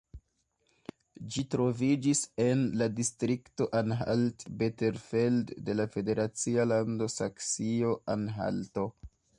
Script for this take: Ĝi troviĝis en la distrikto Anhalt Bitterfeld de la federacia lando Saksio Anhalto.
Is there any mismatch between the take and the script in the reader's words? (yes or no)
no